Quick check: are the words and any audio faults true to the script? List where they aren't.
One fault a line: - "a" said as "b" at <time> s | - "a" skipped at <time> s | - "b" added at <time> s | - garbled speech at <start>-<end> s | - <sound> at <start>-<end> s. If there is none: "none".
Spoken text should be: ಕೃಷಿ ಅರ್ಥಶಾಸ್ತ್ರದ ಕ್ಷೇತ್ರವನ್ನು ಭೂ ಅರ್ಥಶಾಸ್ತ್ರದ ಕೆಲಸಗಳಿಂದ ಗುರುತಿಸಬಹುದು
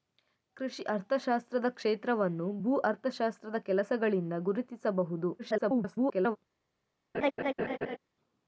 - garbled speech at 5.4-6.4 s
- laugh at 7.1-8.0 s